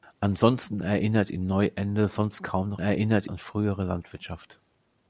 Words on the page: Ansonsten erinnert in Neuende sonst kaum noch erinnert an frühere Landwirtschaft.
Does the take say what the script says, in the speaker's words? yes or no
yes